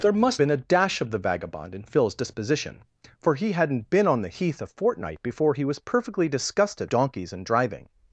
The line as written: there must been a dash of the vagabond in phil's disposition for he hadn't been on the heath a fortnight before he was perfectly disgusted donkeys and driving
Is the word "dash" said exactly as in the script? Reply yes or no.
yes